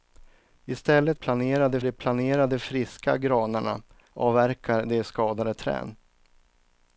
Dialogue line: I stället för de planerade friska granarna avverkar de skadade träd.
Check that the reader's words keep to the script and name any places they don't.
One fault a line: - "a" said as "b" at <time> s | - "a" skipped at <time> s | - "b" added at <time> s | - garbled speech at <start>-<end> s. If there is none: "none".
- "för" said as "planerade" at 1.1 s